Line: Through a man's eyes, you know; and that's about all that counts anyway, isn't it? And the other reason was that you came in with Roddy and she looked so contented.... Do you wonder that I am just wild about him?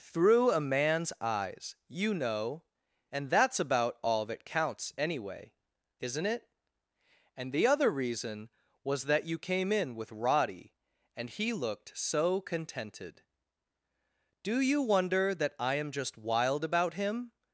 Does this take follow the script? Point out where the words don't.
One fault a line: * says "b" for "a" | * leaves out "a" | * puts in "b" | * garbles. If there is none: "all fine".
* says "he" for "she"